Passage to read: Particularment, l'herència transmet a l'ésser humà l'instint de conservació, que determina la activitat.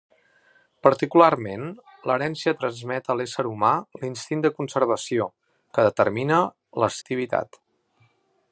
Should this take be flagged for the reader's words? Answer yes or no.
no